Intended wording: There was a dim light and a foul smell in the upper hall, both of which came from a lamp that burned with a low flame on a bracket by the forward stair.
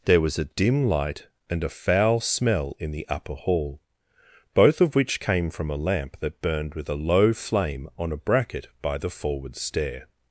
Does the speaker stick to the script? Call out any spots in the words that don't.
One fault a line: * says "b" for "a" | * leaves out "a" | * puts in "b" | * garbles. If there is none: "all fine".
all fine